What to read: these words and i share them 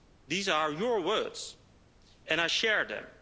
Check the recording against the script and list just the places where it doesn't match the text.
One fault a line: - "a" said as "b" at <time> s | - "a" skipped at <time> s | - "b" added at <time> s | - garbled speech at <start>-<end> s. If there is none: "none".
- "are your" added at 0.5 s